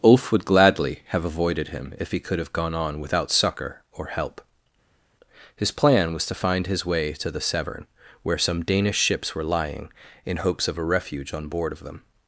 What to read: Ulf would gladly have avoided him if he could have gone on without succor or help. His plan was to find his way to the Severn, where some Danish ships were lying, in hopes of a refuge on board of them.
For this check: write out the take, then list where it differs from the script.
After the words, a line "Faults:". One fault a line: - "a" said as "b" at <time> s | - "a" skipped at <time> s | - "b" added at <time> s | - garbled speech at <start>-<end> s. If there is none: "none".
Ulf would gladly have avoided him if he could have gone on without succor or help. His plan was to find his way to the Severn, where some Danish ships were lying, in hopes of a refuge on board of them.
Faults:
none